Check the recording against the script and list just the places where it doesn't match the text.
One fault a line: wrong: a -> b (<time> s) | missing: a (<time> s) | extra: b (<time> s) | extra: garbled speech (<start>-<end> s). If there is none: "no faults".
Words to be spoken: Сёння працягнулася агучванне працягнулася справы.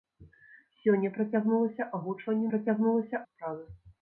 no faults